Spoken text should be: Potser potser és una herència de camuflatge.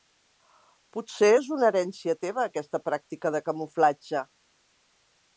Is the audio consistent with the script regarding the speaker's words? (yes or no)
no